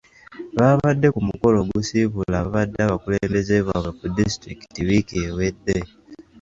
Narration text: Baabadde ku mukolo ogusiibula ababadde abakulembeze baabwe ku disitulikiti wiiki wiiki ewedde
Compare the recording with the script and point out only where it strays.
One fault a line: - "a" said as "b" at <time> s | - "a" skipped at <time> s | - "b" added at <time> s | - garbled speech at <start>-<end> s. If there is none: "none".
- "wiiki" skipped at 5.1 s